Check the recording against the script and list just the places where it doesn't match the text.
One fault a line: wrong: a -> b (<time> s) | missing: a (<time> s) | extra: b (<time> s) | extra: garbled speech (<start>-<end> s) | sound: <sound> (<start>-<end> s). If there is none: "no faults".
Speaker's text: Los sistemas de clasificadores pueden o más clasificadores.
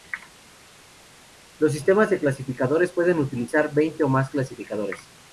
extra: utilizar veinte (3.2 s)